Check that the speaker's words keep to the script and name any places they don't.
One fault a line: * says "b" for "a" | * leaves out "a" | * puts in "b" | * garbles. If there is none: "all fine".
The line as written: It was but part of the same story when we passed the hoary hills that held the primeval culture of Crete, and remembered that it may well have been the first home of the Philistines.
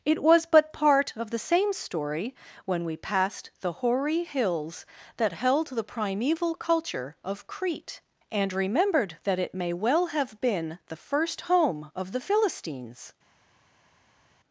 all fine